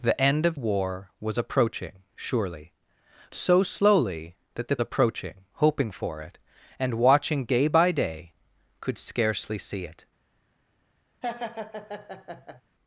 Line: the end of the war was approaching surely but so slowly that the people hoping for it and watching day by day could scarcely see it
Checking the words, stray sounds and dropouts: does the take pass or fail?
fail